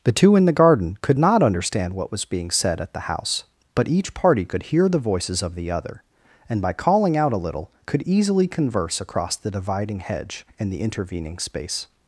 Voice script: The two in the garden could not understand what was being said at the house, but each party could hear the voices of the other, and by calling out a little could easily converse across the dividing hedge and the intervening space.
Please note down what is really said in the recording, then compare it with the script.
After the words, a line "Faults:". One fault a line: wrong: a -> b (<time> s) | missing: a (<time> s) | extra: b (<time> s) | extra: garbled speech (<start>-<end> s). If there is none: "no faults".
The two in the garden could not understand what was being said at the house, but each party could hear the voices of the other, and by calling out a little could easily converse across the dividing hedge and the intervening space.
Faults:
no faults